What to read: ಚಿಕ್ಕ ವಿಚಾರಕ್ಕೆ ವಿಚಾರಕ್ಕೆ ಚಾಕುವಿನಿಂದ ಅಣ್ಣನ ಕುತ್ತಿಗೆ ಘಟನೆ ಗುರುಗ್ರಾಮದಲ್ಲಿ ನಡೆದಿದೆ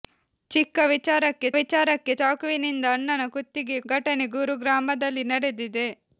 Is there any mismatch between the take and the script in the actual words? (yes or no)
no